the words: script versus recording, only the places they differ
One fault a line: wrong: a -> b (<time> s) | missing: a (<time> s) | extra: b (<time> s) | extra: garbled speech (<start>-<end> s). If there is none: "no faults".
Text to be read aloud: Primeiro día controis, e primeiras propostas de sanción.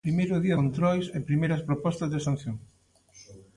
no faults